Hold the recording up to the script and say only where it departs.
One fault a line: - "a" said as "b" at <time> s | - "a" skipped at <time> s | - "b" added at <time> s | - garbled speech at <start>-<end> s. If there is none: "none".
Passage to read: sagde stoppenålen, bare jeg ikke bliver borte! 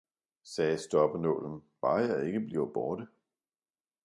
none